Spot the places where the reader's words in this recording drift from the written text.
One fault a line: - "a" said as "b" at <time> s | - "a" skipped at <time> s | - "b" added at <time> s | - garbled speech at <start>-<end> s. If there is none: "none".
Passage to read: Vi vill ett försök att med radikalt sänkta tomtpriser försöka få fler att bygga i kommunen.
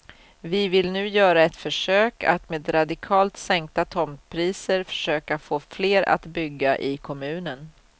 - "nu göra" added at 0.9 s